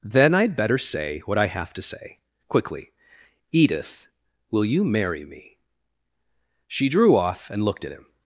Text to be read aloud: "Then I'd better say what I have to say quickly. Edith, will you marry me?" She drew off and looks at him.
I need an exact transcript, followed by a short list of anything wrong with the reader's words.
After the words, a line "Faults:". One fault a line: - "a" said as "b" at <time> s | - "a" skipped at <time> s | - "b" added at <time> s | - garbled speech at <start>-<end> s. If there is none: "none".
"Then I'd better say what I have to say quickly. Edith, will you marry me?" She drew off and looked at him.
Faults:
- "looks" said as "looked" at 7.6 s